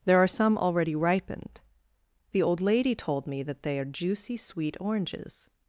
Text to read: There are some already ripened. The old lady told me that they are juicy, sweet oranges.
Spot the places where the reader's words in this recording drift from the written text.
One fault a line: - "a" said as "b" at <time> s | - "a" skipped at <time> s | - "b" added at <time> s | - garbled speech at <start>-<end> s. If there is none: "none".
none